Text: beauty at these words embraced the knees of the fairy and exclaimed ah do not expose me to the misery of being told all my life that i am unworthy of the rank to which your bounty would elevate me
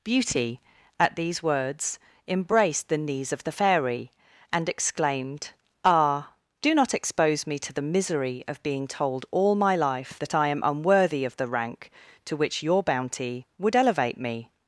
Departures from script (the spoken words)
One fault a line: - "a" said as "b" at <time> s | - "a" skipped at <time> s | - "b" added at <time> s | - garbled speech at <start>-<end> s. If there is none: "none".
none